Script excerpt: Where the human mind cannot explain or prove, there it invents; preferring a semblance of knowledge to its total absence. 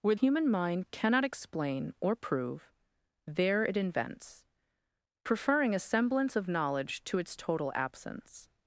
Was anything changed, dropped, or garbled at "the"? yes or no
yes